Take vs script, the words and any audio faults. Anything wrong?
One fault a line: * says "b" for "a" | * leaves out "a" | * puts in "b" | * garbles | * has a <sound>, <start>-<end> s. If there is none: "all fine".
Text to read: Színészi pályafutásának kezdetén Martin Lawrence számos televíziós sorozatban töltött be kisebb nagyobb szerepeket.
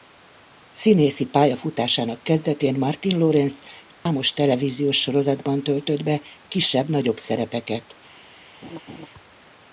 * has a dropout, 3.9-4.1 s
* has a laugh, 8.6-9.1 s